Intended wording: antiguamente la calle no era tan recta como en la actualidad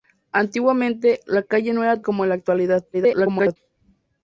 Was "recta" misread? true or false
true